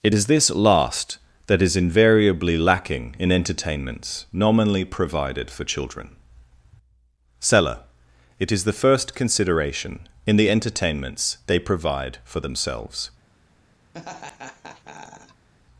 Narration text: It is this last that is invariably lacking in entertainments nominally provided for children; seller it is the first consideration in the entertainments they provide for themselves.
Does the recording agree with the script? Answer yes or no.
yes